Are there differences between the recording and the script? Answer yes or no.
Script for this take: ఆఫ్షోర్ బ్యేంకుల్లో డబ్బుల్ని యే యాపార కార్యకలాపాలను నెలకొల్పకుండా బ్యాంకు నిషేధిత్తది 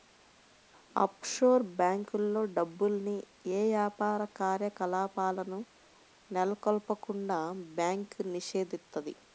no